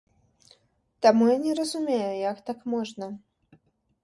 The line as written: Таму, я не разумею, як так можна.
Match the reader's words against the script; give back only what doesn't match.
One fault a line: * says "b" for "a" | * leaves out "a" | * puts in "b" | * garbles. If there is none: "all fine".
all fine